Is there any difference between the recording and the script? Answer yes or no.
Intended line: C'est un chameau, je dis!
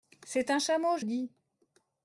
no